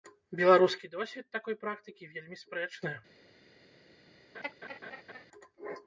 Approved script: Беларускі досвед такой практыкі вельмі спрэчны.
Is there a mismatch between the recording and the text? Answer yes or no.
no